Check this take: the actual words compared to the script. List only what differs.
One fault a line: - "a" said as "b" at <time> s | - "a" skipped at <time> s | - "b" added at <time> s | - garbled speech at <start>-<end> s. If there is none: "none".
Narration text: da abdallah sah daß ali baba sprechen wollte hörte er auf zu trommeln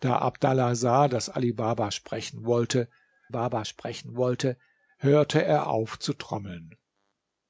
- "baba sprechen wollte" added at 3.3 s